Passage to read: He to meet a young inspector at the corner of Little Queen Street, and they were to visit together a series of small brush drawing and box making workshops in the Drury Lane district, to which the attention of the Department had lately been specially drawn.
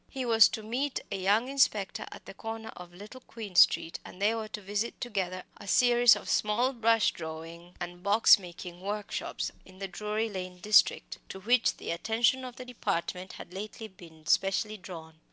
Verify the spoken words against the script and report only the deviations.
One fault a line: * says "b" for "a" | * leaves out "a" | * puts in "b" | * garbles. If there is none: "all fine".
* puts in "was"